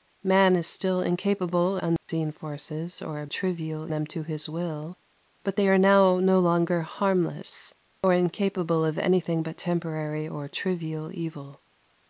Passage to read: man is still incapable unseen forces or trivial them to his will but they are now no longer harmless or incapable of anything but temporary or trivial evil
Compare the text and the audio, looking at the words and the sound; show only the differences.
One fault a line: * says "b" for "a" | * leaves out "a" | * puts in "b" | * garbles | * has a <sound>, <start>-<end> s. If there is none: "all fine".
* has a dropout, 2.0-2.1 s